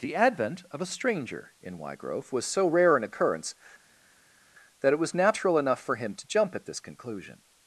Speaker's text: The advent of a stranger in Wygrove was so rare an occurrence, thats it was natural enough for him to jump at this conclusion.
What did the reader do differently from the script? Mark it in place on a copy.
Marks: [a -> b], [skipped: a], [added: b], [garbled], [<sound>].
The advent of a stranger in Wygrove was so rare an occurrence, [thats -> that] it was natural enough for him to jump at this conclusion.